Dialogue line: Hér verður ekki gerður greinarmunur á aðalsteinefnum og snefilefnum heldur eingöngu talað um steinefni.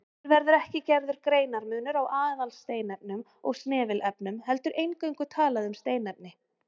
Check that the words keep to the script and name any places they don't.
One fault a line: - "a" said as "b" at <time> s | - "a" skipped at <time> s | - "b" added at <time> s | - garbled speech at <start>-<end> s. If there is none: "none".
none